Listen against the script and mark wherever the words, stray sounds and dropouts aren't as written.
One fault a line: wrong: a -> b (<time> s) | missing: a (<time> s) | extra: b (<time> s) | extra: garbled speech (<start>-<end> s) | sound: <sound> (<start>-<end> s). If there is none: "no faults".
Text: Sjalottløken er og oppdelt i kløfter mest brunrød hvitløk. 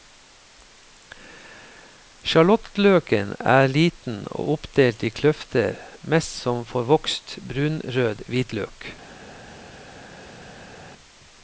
extra: liten (3.7 s)
extra: som forvokst (6.4 s)